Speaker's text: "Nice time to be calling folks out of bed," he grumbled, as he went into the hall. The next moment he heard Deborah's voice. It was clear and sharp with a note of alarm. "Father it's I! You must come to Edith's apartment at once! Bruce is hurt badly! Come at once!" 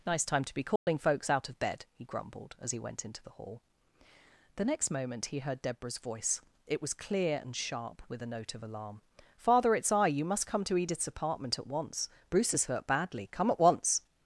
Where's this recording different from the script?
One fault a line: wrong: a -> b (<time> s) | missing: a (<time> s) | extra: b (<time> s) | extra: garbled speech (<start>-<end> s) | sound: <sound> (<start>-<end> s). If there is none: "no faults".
sound: dropout (0.8-0.9 s)